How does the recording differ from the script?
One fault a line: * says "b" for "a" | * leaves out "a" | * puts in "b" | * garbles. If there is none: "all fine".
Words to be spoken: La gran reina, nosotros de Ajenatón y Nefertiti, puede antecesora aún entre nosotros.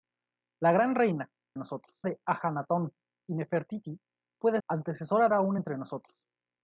all fine